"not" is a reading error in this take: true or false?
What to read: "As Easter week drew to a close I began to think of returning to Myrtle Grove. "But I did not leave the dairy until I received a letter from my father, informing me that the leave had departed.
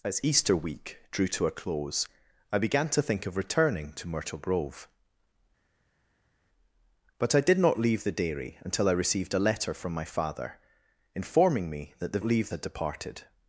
false